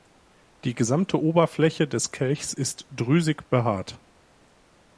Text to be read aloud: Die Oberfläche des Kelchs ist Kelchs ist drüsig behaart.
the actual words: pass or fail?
fail